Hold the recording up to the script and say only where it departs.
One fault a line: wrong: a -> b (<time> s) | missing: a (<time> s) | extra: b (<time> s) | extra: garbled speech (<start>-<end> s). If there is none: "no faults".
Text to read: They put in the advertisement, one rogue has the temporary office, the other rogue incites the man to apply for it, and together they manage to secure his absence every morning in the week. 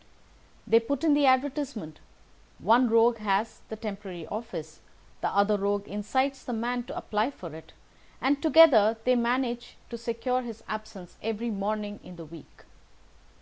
no faults